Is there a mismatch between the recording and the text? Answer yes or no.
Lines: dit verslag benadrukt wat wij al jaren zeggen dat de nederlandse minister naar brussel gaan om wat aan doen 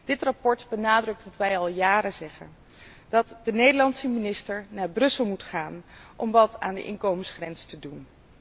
yes